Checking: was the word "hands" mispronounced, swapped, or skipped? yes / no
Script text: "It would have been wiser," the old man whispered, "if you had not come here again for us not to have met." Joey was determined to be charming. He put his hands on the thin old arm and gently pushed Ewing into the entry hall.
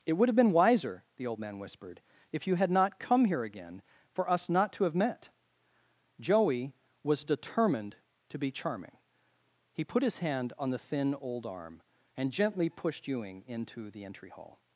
yes